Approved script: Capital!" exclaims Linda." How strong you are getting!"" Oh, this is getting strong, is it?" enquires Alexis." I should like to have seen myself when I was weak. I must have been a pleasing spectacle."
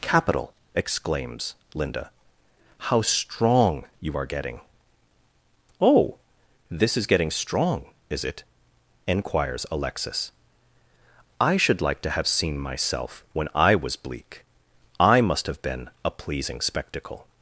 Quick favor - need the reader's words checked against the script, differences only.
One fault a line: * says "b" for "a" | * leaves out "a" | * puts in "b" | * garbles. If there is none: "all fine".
* says "bleak" for "weak"